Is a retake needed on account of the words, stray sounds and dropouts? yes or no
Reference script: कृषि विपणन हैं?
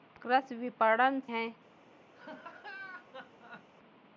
yes